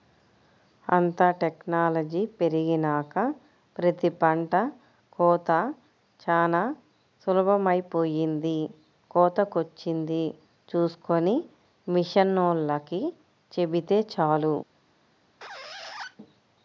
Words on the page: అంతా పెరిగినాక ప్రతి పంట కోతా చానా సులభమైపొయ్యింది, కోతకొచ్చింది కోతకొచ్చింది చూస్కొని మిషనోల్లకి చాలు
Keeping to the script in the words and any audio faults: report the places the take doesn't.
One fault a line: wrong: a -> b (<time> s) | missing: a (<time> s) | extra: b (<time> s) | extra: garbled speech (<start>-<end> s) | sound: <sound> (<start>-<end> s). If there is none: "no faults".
extra: టెక్నాలజీ (1.4 s)
missing: కోతకొచ్చింది (10.2 s)
extra: చెబితే (13.5 s)
sound: squeak (15.4-16.2 s)